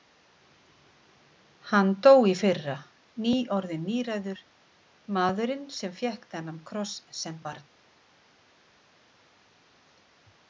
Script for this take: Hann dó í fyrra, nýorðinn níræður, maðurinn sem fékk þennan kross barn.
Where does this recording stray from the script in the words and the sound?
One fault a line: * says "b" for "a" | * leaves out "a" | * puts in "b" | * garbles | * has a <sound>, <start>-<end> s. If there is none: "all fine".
* puts in "sem"